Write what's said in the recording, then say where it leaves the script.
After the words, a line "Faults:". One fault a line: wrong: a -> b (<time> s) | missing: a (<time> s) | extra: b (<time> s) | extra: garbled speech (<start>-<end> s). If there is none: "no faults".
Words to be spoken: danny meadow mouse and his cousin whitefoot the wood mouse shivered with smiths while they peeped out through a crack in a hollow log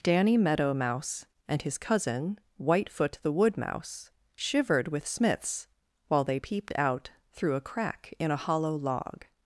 danny meadow mouse and his cousin whitefoot the wood mouse shivered with smiths while they peeped out through a crack in a hollow log
Faults:
no faults